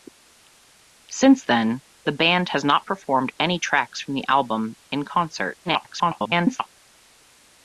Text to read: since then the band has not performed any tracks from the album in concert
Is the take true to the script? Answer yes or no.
no